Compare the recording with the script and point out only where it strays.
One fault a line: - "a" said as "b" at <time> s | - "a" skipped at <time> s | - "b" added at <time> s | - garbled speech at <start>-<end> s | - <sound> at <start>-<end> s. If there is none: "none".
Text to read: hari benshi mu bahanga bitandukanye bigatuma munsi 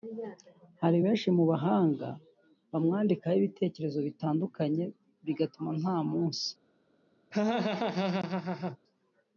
- "bamwandikaho ibitekerezo" added at 2.7 s
- "nta" added at 5.8 s
- laugh at 7.3-8.8 s